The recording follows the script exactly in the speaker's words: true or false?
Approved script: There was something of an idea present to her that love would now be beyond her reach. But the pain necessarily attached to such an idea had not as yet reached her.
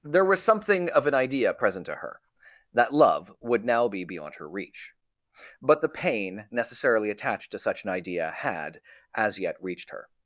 false